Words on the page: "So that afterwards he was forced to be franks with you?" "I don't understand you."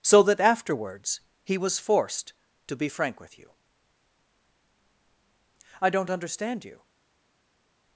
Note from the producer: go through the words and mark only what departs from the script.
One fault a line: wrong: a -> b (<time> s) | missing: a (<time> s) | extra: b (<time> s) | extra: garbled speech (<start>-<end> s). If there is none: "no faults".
wrong: franks -> frank (2.9 s)